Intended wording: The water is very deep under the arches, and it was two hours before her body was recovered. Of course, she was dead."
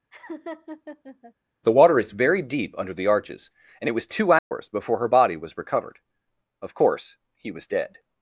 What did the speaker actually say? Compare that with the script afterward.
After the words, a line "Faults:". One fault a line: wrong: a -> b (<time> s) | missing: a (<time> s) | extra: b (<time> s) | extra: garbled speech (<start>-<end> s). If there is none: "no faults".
The water is very deep under the arches, and it was two hours before her body was recovered. Of course, he was dead."
Faults:
wrong: she -> he (7.3 s)